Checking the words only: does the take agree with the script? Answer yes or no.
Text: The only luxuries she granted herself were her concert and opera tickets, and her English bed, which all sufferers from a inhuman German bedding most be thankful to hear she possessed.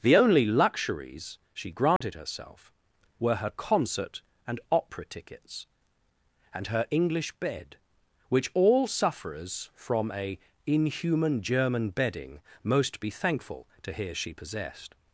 yes